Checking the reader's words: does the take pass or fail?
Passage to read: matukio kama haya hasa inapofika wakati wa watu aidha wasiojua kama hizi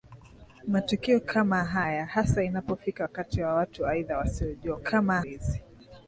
pass